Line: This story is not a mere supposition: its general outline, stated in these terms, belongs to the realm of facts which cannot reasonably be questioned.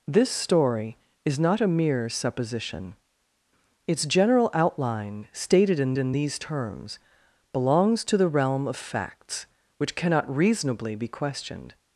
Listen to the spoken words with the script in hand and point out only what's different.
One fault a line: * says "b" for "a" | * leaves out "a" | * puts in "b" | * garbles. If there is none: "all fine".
* puts in "in"